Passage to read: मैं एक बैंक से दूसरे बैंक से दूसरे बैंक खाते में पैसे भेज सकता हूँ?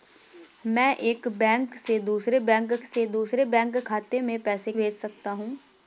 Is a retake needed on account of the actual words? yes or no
no